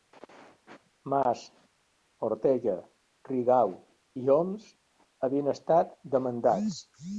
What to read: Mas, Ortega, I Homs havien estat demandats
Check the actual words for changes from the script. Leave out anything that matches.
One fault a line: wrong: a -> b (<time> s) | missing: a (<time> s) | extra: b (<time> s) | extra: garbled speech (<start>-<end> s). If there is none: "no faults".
extra: Rigau (3.3 s)